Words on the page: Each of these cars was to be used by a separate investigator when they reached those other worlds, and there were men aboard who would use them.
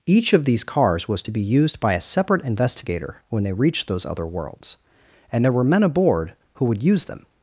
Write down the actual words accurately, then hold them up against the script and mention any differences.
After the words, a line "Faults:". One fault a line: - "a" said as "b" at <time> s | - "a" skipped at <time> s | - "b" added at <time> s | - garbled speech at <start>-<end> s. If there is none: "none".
Each of these cars was to be used by a separate investigator when they reached those other worlds, and there were men aboard who would use them.
Faults:
none